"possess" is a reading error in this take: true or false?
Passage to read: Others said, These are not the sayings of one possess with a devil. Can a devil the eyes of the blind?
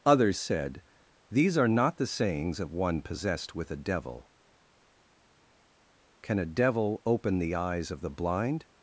true